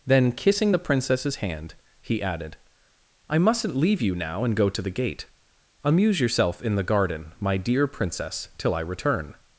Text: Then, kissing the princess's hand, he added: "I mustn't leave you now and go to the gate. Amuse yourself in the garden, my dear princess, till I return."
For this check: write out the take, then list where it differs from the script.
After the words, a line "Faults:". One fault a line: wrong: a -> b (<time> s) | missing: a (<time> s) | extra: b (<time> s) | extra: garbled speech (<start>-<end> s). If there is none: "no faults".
Then, kissing the princess's hand, he added: "I mustn't leave you now and go to the gate. Amuse yourself in the garden, my dear princess, till I return."
Faults:
no faults